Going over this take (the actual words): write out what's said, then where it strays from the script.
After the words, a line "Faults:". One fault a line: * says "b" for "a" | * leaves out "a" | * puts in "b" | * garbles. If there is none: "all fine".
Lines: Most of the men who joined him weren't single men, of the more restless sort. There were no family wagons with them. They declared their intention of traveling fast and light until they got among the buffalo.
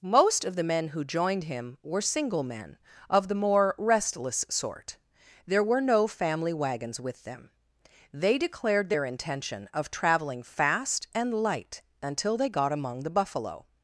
Most of the men who joined him were single men, of the more restless sort. There were no family wagons with them. They declared their intention of traveling fast and light until they got among the buffalo.
Faults:
* says "were" for "weren't"